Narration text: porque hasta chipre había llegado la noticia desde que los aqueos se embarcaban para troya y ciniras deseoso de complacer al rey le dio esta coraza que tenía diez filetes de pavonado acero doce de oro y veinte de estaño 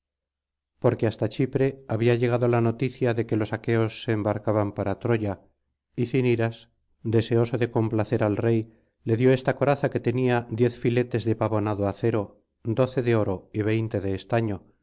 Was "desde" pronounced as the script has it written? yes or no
no